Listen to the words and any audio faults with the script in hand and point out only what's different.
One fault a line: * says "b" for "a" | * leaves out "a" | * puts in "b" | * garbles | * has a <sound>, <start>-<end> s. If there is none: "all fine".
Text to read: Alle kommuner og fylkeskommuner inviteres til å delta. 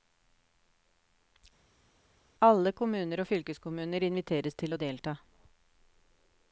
all fine